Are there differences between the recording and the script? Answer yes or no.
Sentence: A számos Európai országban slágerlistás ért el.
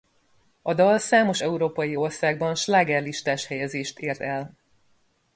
yes